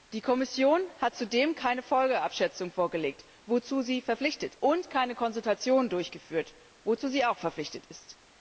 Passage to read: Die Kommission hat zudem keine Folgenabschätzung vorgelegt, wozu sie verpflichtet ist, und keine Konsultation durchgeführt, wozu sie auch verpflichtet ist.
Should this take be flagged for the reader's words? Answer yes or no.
yes